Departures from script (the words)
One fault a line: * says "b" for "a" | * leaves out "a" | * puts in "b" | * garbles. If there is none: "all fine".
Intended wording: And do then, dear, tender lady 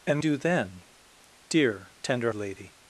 all fine